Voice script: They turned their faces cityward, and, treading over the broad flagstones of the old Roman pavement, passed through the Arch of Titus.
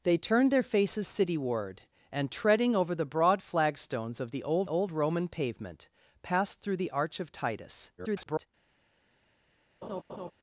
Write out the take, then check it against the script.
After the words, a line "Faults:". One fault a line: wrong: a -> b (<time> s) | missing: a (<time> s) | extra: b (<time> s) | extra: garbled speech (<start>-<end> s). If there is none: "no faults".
They turned their faces cityward, and, treading over the broad flagstones of the old old Roman pavement, passed through the Arch of Titus. [garbled]
Faults:
extra: old (4.7 s)
extra: garbled speech (8.0-8.5 s)